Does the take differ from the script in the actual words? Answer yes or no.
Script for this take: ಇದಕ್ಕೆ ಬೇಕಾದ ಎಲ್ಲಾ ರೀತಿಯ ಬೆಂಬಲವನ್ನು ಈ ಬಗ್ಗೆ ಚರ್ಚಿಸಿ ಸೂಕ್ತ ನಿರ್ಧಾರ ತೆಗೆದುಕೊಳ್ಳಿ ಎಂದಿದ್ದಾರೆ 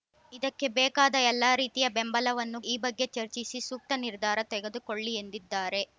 no